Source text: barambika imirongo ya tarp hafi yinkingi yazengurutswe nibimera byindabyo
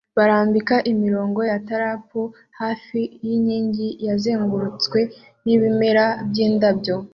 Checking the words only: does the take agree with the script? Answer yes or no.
yes